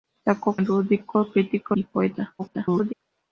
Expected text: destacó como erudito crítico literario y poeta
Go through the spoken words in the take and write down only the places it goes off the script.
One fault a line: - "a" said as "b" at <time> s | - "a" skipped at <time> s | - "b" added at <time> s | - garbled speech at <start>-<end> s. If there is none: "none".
- "como" skipped at 0.6 s
- "literario" skipped at 1.7 s
- garbled speech at 2.4-2.9 s